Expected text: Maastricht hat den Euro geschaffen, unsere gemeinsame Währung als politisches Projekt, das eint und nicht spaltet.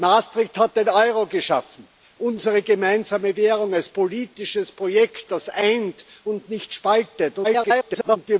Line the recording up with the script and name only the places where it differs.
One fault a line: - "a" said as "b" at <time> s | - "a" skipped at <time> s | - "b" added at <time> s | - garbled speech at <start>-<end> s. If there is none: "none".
- garbled speech at 7.4-8.2 s